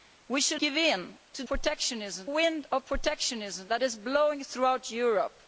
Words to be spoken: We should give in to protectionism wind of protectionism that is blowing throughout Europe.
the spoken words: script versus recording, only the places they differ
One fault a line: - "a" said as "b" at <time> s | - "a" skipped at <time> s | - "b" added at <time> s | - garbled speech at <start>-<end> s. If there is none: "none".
none